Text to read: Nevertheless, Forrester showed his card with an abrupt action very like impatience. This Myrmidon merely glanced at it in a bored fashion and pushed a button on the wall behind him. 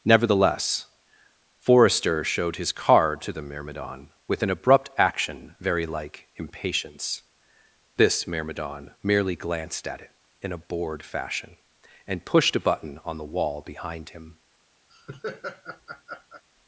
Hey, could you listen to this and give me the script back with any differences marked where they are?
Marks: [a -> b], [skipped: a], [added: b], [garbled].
Nevertheless, Forrester showed his card [added: to the Myrmidon] with an abrupt action very like impatience. This Myrmidon merely glanced at it in a bored fashion and pushed a button on the wall behind him.